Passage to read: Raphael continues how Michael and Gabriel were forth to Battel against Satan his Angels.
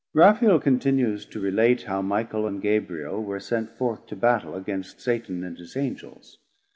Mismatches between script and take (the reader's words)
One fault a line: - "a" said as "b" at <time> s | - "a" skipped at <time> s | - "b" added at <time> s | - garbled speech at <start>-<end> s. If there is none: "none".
- "to relate" added at 1.3 s
- "sent" added at 3.4 s
- "and" added at 5.4 s